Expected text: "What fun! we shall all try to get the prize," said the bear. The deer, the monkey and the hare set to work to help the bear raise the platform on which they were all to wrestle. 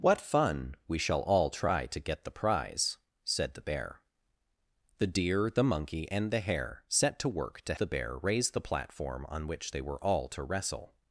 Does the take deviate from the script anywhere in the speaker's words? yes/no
yes